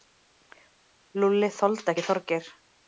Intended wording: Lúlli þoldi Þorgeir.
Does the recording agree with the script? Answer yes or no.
no